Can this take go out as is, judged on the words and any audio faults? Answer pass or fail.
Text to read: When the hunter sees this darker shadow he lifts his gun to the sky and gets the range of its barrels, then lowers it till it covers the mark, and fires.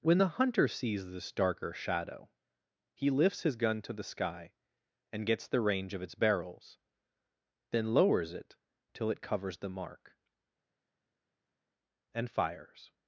pass